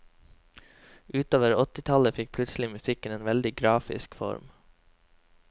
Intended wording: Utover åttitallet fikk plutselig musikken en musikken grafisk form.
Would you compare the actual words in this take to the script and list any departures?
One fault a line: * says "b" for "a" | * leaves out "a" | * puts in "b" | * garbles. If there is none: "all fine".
* says "veldig" for "musikken"